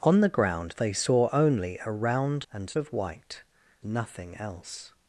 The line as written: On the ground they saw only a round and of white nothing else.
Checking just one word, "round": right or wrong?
right